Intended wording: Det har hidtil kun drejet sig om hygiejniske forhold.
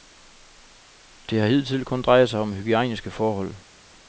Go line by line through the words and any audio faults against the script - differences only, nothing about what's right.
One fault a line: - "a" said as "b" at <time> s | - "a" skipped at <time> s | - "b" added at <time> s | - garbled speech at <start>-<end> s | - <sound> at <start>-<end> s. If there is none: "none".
none